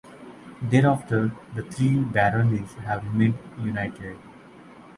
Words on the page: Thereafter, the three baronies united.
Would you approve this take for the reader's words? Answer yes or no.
no